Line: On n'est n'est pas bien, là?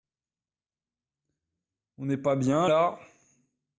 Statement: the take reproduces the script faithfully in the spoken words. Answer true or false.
false